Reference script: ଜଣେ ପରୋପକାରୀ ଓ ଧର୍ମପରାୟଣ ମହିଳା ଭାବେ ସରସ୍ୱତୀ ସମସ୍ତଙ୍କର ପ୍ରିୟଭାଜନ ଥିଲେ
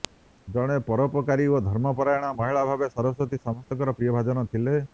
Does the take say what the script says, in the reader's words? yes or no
yes